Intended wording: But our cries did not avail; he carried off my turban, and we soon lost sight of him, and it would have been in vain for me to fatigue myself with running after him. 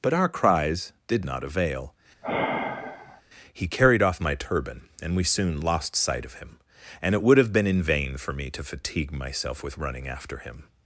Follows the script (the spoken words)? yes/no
yes